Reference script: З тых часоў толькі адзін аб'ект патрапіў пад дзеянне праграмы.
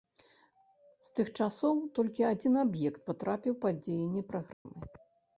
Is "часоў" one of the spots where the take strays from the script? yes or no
no